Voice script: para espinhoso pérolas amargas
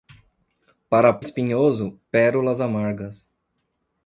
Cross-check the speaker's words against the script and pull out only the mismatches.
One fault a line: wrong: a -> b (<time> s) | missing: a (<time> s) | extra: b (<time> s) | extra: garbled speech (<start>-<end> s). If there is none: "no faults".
no faults